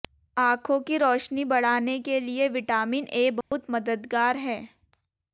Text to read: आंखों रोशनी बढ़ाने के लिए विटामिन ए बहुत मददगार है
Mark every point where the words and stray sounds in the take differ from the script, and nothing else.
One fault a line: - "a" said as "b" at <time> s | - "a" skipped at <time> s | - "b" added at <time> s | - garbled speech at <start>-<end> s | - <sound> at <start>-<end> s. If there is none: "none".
- "की" added at 0.8 s
- dropout at 3.4-3.5 s